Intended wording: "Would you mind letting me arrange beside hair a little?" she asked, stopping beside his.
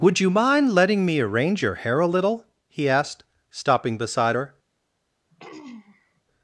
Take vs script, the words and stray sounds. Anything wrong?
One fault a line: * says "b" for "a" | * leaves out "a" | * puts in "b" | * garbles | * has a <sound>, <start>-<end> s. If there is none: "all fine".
* says "your" for "beside"
* says "he" for "she"
* says "her" for "his"
* has a throat clearing, 5.3-6.2 s